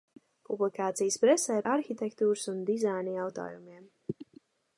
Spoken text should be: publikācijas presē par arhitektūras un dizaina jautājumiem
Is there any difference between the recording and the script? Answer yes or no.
yes